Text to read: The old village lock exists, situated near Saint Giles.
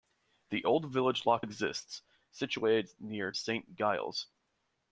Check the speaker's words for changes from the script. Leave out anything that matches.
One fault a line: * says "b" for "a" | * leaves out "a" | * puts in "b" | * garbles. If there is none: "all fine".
all fine